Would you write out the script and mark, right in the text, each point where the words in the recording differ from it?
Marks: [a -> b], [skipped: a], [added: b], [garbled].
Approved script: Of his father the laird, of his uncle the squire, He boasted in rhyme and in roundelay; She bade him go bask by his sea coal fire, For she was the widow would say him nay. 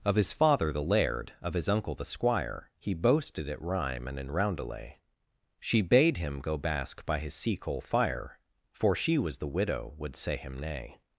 Of his father the laird, of his uncle the squire, He boasted [in -> at] rhyme and in roundelay; She bade him go bask by his sea coal fire, For she was the widow would say him nay.